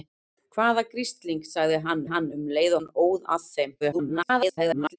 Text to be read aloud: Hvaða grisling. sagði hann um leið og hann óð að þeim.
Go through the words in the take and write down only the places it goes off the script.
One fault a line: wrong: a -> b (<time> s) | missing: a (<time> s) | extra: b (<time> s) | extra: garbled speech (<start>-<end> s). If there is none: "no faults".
extra: hann (2.1 s)
missing: og (2.8 s)
extra: garbled speech (3.8-5.0 s)